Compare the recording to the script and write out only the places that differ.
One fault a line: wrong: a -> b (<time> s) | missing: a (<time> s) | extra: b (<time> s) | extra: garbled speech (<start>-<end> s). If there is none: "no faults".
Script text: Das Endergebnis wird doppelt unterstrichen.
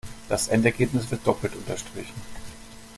no faults